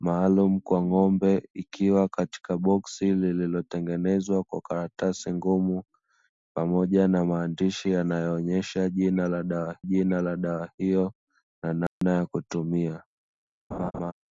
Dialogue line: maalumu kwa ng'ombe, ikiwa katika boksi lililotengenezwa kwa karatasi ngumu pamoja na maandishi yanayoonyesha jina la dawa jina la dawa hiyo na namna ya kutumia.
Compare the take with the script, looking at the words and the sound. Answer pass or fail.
fail